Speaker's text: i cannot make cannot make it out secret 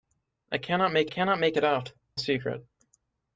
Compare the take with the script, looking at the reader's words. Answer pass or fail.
pass